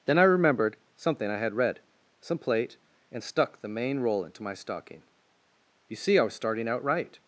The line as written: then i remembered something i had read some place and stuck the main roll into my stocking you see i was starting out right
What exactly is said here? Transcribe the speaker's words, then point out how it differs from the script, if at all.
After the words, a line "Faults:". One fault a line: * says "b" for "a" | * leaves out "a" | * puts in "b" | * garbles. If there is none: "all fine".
then i remembered something i had read some plate and stuck the main roll into my stocking you see i was starting out right
Faults:
* says "plate" for "place"